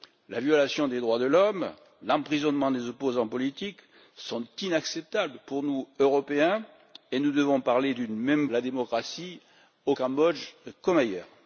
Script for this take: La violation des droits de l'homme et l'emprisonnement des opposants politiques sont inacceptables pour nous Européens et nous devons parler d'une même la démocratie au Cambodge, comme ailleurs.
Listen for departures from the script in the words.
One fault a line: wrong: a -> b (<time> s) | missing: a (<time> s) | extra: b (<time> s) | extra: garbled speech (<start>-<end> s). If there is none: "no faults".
no faults